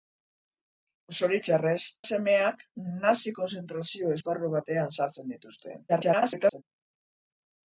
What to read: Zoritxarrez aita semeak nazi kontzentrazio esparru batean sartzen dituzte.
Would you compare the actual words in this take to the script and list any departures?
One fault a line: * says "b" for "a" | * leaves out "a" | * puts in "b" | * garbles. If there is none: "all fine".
* leaves out "aita"
* garbles